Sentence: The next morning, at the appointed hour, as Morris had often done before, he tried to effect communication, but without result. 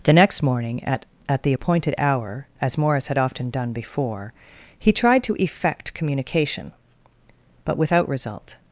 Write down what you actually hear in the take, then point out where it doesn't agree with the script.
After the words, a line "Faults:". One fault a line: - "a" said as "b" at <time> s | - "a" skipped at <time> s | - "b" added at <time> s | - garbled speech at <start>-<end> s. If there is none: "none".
The next morning, at at the appointed hour, as Morris had often done before, he tried to effect communication, but without result.
Faults:
- "at" added at 1.3 s